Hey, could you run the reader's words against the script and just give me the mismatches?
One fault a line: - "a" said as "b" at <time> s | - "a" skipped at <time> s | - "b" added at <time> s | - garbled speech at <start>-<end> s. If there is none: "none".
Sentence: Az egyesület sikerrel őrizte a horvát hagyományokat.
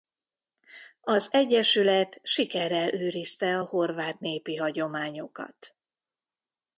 - "népi" added at 4.2 s